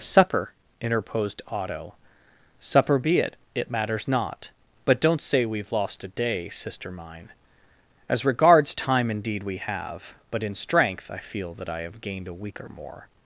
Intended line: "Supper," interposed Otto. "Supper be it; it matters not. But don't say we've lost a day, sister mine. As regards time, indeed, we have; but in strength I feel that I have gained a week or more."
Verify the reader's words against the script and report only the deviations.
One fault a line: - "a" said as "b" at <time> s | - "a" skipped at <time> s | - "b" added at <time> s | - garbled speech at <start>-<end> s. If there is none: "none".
none